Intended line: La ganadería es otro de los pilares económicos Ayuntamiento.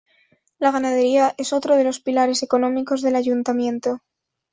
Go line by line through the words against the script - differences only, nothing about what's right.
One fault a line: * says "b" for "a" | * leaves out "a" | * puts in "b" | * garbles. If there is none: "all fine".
* puts in "del"